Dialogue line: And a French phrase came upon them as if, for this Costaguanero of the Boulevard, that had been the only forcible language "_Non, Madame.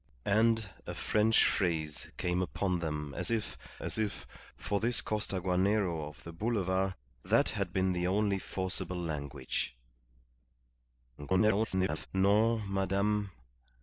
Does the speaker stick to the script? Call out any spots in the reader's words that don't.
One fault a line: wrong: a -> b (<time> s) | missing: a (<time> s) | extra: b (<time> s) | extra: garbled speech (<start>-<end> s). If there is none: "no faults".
extra: as if (3.8 s)
extra: garbled speech (11.2-12.1 s)